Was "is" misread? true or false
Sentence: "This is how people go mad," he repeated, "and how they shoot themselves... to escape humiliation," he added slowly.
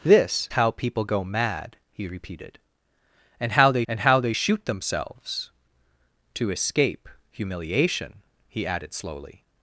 true